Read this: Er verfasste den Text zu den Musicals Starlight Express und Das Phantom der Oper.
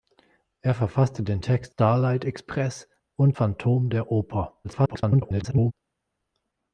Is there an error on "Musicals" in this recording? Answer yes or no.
yes